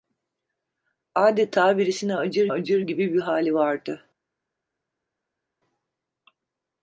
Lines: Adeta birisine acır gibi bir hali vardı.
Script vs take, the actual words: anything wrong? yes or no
yes